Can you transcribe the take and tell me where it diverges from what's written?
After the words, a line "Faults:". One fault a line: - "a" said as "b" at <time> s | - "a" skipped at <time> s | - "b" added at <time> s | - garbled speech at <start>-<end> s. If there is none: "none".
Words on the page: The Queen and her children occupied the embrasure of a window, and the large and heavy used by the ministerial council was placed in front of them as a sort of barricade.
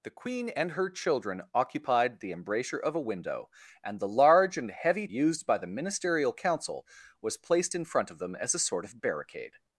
The Queen and her children occupied the embrasure of a window, and the large and heavy used by the ministerial council was placed in front of them as a sort of barricade.
Faults:
none